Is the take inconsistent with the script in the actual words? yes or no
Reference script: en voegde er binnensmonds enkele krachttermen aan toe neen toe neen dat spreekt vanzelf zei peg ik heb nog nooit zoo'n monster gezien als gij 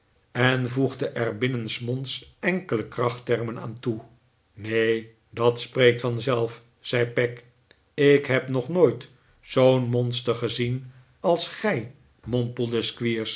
yes